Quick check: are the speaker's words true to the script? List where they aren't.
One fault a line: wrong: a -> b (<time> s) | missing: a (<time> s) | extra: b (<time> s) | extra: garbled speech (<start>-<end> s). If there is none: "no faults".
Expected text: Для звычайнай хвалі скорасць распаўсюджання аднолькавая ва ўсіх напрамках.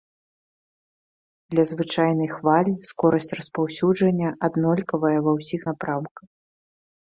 no faults